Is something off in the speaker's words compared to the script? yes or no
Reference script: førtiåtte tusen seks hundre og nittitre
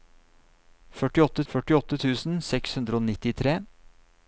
yes